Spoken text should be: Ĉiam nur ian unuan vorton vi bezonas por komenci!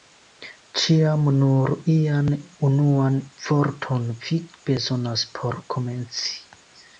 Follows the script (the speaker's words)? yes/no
yes